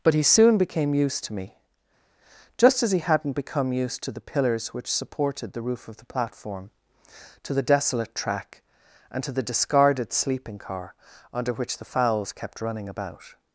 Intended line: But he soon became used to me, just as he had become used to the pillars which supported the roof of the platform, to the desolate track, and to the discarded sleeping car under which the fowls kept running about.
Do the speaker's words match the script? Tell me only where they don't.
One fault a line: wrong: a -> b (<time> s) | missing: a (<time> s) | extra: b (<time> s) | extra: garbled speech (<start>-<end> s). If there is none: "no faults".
wrong: had -> hadn't (3.0 s)